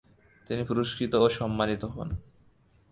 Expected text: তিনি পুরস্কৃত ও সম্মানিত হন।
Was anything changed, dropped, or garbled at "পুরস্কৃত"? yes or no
no